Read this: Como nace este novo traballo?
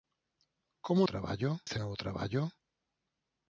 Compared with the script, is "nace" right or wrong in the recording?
wrong